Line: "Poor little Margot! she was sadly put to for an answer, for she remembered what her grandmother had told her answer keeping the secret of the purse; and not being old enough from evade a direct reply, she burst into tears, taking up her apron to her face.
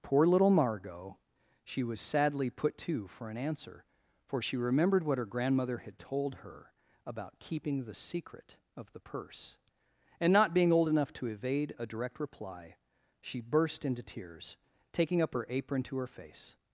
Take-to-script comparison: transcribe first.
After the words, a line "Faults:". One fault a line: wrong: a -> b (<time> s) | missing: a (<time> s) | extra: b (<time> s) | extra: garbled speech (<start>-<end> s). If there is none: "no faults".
"Poor little Margot! she was sadly put to for an answer, for she remembered what her grandmother had told her about keeping the secret of the purse; and not being old enough to evade a direct reply, she burst into tears, taking up her apron to her face.
Faults:
wrong: answer -> about (7.0 s)
wrong: from -> to (11.1 s)